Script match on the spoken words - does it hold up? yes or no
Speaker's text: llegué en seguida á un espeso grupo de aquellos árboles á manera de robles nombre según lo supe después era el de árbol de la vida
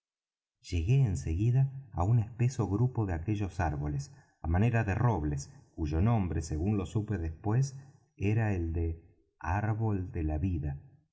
no